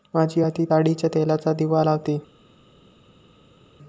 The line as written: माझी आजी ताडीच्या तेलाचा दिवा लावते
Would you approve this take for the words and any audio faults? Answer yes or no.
yes